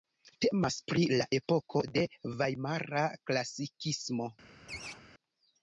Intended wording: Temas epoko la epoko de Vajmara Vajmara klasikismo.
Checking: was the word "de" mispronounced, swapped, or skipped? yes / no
no